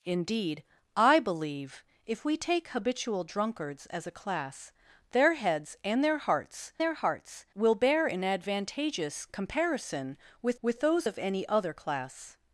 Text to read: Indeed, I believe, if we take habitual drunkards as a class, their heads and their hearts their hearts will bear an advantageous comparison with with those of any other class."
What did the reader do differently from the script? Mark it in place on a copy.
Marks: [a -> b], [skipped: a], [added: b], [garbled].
Indeed, I believe, if we take habitual drunkards as a class, their heads and their hearts their hearts will bear an advantageous comparison with with those of any other class."